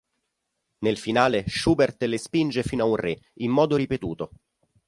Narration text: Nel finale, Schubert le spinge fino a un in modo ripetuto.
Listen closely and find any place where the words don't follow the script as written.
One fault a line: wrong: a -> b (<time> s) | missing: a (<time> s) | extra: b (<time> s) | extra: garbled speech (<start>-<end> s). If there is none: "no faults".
extra: re (3.0 s)